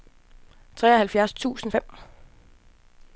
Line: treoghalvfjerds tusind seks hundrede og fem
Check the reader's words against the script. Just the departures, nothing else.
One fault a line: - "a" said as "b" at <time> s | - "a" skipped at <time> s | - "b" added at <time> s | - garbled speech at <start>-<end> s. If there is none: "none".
- "seks hundrede og" skipped at 1.7 s